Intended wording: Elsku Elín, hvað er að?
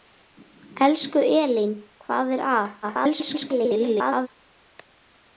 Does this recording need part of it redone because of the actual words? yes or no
yes